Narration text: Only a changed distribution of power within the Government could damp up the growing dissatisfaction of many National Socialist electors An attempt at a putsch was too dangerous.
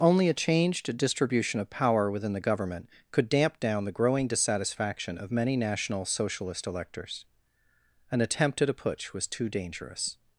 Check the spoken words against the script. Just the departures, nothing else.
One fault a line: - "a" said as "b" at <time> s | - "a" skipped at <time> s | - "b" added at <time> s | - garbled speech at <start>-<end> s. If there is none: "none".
- "up" said as "down" at 3.6 s